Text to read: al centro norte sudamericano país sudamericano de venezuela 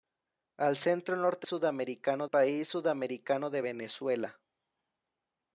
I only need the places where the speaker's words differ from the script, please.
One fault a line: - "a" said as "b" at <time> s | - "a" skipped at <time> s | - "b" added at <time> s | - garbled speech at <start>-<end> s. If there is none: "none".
none